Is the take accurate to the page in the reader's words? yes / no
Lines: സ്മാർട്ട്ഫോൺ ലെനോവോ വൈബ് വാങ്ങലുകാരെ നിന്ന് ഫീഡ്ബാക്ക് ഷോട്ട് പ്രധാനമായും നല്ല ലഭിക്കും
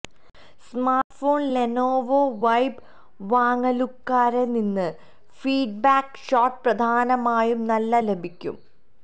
yes